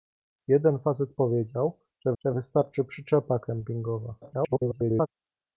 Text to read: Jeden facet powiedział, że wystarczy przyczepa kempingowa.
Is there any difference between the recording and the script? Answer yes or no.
yes